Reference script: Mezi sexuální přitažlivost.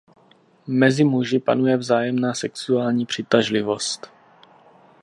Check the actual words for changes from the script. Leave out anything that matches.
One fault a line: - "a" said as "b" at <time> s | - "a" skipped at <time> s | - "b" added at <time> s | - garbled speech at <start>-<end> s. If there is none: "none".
- "muži panuje vzájemná" added at 1.0 s